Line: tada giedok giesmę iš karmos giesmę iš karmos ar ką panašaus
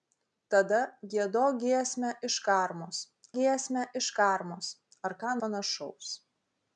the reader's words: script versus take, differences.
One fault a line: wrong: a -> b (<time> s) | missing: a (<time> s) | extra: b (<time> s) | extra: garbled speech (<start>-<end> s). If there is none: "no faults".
no faults